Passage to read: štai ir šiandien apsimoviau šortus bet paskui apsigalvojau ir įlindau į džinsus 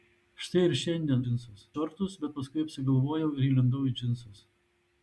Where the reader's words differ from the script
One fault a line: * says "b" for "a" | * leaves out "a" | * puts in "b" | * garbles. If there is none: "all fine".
* says "džinsus" for "apsimoviau"